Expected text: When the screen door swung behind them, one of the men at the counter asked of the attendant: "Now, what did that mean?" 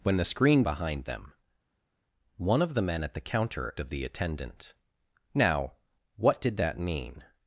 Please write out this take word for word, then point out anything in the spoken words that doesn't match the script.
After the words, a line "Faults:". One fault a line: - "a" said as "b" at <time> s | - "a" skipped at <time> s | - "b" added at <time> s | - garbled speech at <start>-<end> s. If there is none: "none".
When the screen behind them, one of the men at the counter of the attendant: "Now, what did that mean?"
Faults:
- "door swung" skipped at 0.6 s
- "asked" skipped at 3.7 s